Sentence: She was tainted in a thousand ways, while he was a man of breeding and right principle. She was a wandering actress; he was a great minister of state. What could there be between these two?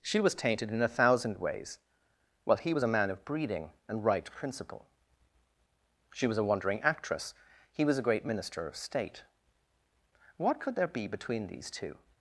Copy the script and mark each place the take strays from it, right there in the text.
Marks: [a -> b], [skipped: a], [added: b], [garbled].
She was tainted in a thousand ways, while he was a man of breeding and right principle. She was a wandering actress; he was a great minister of state. What could there be between these two?